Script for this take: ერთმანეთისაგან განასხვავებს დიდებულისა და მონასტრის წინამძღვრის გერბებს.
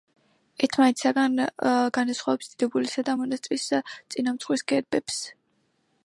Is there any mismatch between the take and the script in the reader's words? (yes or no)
no